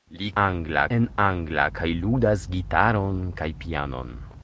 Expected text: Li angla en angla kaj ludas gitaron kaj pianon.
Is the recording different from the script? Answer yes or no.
no